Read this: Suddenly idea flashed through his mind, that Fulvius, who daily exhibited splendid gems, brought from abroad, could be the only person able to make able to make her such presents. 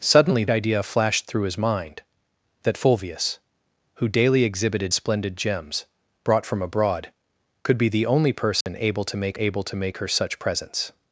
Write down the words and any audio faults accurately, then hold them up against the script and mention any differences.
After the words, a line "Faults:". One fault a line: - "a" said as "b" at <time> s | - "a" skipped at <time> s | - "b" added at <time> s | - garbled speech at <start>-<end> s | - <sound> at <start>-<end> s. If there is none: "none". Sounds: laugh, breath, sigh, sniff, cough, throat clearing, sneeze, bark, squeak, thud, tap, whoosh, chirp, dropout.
Suddenly idea flashed through his mind, that Fulvius, who daily exhibited splendid gems, brought from abroad, could be the only person able to make able to make her such presents.
Faults:
- dropout at 8.6-8.7 s